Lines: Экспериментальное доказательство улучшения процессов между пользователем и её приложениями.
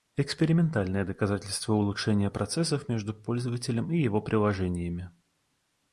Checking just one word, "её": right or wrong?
wrong